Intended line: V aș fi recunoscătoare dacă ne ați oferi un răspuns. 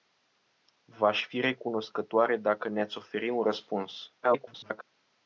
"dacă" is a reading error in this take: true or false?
false